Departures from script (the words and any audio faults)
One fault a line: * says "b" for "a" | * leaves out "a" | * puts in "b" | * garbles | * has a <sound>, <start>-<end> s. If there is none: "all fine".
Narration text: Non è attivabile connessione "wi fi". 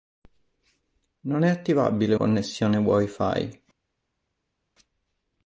all fine